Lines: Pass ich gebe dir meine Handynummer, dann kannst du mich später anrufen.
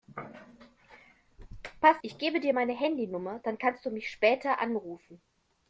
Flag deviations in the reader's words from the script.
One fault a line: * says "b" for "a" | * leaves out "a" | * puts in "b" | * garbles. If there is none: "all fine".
all fine